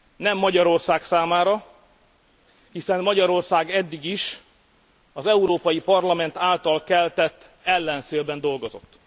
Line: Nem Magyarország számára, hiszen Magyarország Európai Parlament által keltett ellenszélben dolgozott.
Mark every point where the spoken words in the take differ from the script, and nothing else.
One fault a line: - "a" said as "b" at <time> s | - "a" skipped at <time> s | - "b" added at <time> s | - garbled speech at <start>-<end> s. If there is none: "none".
- "eddig is az" added at 3.7 s